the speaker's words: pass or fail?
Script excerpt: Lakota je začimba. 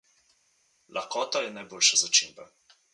fail